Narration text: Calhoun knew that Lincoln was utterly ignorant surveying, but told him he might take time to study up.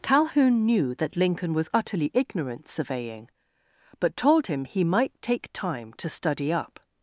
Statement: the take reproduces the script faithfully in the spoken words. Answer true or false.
true